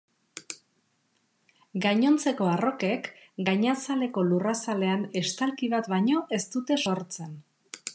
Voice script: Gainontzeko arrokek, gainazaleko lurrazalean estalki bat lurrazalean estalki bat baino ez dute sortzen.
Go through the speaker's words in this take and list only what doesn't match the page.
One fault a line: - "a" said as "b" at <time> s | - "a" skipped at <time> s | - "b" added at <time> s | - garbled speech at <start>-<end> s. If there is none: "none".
- "lurrazalean estalki bat" skipped at 5.9 s